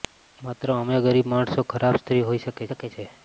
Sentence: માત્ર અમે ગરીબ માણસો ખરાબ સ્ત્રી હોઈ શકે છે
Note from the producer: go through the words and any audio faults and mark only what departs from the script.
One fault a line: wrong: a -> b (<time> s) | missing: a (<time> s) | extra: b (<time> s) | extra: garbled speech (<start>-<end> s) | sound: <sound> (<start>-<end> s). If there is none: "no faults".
extra: શકે (2.7 s)